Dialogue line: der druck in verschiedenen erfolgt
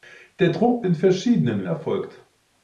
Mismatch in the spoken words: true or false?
false